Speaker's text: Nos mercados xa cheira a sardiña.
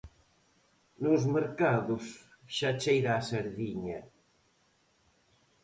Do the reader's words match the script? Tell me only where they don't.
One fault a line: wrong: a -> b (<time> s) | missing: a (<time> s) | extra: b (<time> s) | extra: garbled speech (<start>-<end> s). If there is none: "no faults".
no faults